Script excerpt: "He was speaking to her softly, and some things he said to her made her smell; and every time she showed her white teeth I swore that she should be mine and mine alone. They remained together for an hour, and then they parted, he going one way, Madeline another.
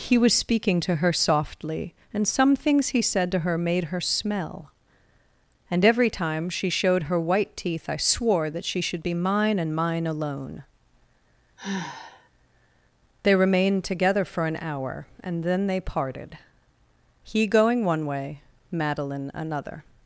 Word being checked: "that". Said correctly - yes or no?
yes